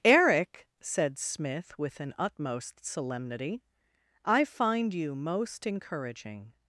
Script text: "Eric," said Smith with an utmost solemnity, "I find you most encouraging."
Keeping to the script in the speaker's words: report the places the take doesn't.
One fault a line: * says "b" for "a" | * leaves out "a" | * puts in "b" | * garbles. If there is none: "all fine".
all fine